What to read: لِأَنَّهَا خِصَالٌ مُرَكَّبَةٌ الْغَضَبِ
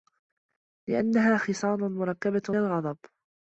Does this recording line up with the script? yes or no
yes